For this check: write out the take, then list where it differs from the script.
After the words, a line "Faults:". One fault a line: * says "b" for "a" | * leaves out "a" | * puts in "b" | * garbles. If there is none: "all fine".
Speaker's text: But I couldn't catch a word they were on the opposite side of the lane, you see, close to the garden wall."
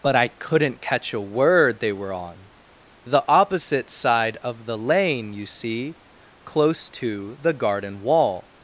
But I couldn't catch a word they were on the opposite side of the lane, you see, close to the garden wall."
Faults:
all fine